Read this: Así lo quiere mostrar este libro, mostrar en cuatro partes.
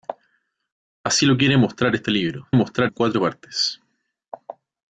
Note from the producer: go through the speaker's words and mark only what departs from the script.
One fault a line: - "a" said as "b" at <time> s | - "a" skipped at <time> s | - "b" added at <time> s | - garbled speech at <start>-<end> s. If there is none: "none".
none